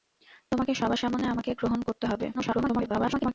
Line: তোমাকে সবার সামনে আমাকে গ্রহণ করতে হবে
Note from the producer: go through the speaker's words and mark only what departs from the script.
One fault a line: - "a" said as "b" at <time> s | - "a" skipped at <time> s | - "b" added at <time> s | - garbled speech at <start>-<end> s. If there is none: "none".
- garbled speech at 2.3-3.3 s